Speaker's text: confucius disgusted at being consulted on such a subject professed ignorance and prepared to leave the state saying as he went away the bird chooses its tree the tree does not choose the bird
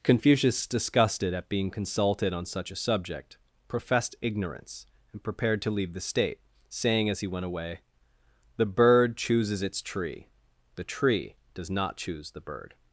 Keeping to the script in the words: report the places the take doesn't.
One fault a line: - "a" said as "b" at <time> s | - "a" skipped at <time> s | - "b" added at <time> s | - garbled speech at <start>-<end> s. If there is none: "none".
none